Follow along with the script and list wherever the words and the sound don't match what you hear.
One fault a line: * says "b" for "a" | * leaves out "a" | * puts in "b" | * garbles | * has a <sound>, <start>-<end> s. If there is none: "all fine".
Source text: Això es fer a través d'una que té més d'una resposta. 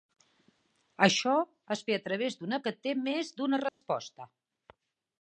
* has a dropout, 3.7-3.8 s